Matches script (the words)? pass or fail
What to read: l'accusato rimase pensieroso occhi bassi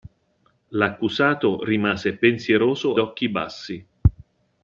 pass